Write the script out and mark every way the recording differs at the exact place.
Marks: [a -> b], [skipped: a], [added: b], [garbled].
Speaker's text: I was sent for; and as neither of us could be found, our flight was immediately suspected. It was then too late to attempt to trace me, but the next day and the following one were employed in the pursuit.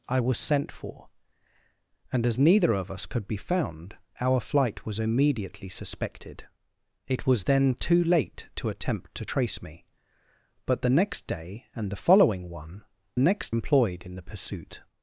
I was sent for; and as neither of us could be found, our flight was immediately suspected. It was then too late to attempt to trace me, but the next day and the following one [were -> next] employed in the pursuit.